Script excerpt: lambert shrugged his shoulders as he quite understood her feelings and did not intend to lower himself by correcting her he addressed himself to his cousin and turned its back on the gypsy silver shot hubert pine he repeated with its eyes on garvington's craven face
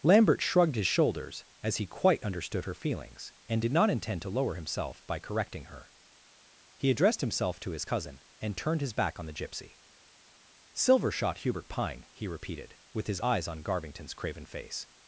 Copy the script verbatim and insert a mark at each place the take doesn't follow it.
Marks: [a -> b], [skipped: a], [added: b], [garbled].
lambert shrugged his shoulders as he quite understood her feelings and did not intend to lower himself by correcting her he addressed himself to his cousin and turned [its -> his] back on the gypsy silver shot hubert pine he repeated with [its -> his] eyes on garvington's craven face